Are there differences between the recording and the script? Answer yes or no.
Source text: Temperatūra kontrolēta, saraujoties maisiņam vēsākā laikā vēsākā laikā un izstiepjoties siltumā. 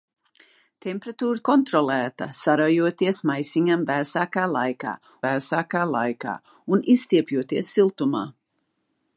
no